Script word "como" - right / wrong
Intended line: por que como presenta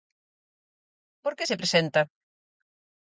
wrong